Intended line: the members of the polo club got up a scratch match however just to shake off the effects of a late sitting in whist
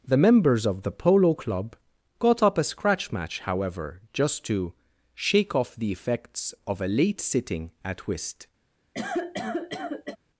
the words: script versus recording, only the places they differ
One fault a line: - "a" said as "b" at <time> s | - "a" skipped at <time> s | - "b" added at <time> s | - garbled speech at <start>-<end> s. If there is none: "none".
- "in" said as "at" at 7.8 s